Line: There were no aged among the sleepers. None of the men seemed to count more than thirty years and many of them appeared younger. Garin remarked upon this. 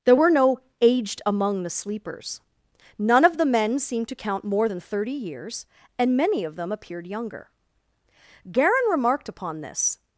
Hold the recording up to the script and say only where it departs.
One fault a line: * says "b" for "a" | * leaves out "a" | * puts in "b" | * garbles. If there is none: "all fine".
all fine